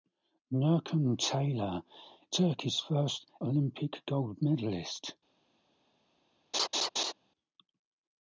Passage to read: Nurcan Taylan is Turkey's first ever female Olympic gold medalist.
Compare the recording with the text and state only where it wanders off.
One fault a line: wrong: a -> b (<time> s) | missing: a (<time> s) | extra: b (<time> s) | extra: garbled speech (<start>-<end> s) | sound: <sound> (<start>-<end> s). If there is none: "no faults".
missing: is (1.8 s)
missing: ever female (3.2 s)
sound: laugh (6.5-7.1 s)